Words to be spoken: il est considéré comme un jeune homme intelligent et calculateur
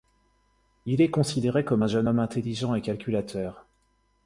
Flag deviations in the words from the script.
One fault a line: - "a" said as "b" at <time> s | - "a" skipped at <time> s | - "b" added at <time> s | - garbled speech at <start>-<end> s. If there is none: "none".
none